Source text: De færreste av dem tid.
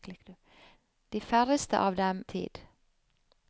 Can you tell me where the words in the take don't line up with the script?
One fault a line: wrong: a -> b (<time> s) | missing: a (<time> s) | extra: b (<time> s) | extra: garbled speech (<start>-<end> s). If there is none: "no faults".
no faults